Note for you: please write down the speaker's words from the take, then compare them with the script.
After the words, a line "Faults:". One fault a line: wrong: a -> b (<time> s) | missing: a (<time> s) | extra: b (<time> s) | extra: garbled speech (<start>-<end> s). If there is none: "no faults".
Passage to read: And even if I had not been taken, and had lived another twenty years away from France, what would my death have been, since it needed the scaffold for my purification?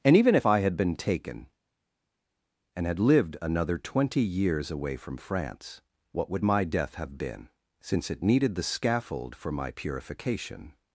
And even if I had been taken, and had lived another twenty years away from France, what would my death have been, since it needed the scaffold for my purification?
Faults:
missing: not (0.8 s)